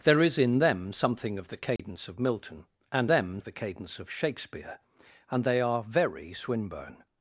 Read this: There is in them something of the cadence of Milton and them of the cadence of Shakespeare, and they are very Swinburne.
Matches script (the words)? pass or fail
pass